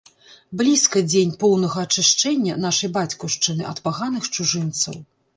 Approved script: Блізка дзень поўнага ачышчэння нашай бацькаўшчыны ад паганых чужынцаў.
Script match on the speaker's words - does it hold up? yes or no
yes